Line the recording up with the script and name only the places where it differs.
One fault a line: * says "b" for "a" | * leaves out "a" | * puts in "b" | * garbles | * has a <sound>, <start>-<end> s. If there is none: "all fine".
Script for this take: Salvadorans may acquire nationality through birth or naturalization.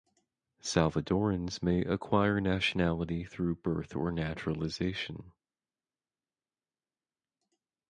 all fine